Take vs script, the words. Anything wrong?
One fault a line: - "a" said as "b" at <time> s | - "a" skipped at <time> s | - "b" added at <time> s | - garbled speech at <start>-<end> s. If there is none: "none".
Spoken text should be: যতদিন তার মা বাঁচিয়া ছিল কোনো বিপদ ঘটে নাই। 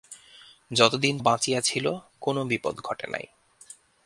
- "তার মা" skipped at 1.1 s